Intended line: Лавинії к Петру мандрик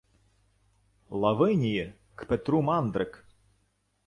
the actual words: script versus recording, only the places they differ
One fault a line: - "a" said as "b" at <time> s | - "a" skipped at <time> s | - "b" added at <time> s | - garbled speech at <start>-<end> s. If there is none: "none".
none